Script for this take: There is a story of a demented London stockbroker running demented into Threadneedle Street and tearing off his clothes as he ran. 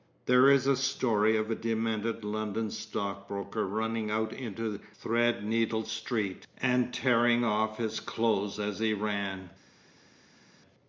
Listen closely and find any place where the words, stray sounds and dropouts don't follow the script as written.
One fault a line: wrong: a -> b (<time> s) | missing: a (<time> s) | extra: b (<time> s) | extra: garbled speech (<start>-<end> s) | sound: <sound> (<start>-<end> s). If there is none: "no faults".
wrong: demented -> out (4.1 s)